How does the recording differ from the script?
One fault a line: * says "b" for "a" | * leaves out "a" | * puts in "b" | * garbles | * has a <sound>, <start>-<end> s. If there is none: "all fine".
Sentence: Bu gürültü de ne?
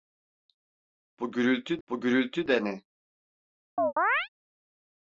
* puts in "bu gürültü"
* has a chirp, 3.8-4.3 s